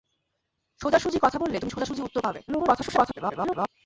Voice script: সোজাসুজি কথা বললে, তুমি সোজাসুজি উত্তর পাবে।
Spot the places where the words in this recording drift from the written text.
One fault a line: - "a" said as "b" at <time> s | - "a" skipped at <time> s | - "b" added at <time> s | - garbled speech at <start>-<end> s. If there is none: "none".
- garbled speech at 2.5-3.7 s